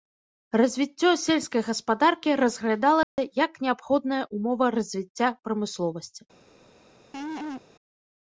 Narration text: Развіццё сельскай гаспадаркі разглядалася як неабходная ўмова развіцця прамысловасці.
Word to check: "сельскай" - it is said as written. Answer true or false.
true